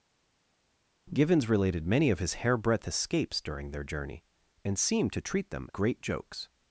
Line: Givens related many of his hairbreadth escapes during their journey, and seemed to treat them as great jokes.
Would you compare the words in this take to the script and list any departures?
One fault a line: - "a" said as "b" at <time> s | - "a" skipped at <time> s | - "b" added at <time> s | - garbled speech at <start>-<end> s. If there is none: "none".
- "as" skipped at 5.7 s